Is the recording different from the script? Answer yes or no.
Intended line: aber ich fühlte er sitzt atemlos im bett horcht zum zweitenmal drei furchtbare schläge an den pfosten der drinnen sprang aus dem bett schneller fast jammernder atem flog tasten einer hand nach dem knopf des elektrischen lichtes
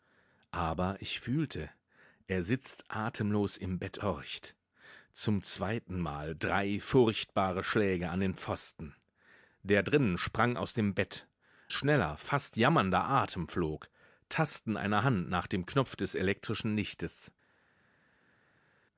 no